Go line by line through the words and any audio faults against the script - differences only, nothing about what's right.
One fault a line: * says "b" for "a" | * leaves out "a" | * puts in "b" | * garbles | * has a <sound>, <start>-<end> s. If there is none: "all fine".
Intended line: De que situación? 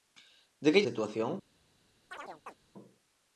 * has a chirp, 2.1-2.6 s